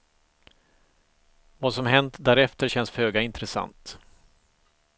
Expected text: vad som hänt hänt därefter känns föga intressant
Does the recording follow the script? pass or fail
fail